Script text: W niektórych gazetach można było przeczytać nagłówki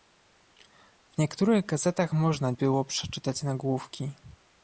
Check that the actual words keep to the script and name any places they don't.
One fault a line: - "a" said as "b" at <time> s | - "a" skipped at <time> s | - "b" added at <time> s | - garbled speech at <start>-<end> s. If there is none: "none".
none